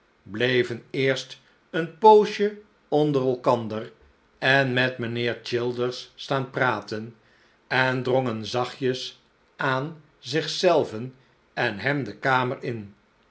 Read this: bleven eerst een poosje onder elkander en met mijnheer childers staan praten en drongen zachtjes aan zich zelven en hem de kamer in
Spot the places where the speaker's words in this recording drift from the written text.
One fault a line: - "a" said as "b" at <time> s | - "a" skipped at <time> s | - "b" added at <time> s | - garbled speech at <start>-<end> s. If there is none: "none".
none